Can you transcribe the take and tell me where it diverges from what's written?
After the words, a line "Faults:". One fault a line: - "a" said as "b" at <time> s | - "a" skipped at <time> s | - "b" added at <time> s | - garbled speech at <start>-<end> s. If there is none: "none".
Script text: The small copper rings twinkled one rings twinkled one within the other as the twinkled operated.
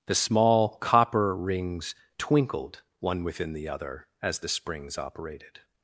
The small copper rings twinkled one within the other as the springs operated.
Faults:
- "rings twinkled one" skipped at 3.2 s
- "twinkled" said as "springs" at 4.5 s